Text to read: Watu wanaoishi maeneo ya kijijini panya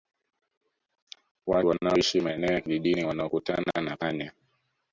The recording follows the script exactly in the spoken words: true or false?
false